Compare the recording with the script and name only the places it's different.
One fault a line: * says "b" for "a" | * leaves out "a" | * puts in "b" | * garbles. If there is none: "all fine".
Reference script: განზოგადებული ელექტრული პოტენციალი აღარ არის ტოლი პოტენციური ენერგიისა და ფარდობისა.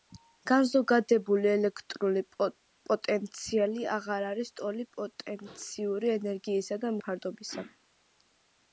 all fine